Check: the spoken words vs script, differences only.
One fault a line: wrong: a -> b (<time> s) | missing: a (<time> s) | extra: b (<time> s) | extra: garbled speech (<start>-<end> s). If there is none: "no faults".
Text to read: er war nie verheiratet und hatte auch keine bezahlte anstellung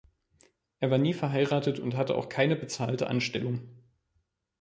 no faults